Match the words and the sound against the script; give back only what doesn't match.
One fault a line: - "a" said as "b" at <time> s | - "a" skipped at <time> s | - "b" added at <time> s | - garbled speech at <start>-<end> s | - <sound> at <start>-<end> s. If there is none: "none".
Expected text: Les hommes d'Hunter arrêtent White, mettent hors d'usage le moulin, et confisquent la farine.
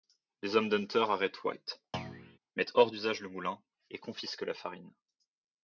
- thud at 1.9-2.4 s